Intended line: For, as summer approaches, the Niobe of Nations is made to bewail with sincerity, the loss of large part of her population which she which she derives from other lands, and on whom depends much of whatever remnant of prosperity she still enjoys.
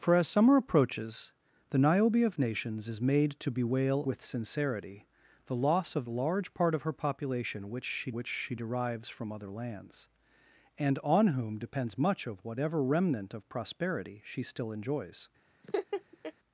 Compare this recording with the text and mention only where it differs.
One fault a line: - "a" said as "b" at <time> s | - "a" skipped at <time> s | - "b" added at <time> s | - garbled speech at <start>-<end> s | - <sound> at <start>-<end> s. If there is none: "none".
- laugh at 15.6-16.3 s